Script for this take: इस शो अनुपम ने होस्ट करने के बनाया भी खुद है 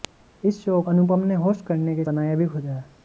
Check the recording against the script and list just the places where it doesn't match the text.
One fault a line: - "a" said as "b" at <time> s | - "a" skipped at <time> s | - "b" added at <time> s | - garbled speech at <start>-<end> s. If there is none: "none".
none